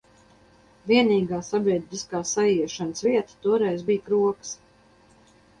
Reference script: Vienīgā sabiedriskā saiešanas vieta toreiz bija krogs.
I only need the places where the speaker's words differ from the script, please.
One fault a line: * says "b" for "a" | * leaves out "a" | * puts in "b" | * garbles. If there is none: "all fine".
all fine